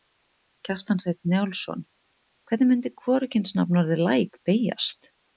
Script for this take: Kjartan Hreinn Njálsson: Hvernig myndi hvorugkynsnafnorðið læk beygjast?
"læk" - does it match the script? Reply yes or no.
yes